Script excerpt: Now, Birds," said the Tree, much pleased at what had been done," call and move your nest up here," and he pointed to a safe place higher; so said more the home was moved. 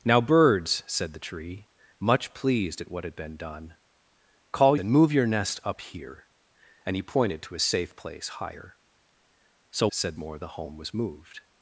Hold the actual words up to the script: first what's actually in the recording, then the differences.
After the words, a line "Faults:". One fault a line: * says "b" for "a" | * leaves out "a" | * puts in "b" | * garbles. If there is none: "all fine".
Now, Birds," said the Tree, much pleased at what had been done," call and move your nest up here," and he pointed to a safe place higher; so said more the home was moved.
Faults:
all fine